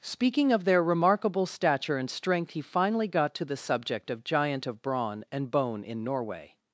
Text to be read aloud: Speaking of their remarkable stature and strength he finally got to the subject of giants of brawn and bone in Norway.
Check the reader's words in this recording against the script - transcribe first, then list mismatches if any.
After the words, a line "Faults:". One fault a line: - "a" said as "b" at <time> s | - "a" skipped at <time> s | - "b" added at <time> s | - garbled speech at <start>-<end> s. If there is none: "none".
Speaking of their remarkable stature and strength he finally got to the subject of giant of brawn and bone in Norway.
Faults:
- "giants" said as "giant" at 4.2 s